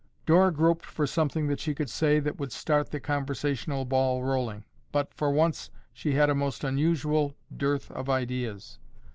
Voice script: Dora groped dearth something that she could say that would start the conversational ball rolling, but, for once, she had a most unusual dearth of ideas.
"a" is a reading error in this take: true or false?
false